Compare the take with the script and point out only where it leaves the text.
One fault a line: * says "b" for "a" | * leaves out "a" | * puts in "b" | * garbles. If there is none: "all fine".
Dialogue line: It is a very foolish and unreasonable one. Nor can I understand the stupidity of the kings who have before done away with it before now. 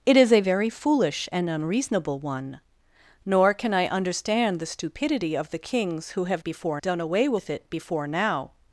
all fine